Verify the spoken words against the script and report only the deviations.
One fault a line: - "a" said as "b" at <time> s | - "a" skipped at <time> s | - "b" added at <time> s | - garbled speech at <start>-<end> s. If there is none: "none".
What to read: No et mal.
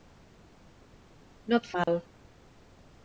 none